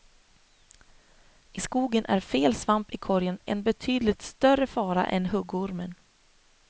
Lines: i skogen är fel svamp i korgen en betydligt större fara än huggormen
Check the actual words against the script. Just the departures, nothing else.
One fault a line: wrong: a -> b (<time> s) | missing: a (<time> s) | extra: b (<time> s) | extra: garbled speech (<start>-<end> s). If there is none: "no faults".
no faults